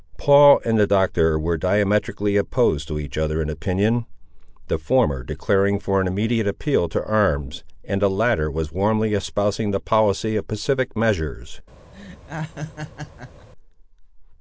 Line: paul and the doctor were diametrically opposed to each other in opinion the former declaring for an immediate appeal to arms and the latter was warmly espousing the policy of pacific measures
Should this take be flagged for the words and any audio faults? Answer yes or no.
yes